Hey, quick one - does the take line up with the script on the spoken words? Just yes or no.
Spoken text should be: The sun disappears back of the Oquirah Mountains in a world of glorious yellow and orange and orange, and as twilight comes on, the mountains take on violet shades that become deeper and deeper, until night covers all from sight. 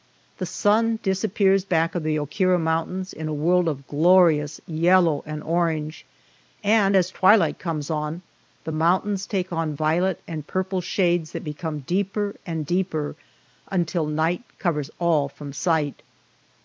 no